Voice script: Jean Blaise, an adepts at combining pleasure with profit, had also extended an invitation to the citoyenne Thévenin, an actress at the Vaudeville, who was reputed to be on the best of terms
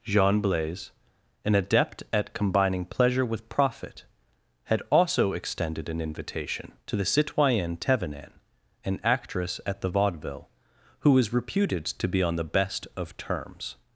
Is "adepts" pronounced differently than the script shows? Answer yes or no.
yes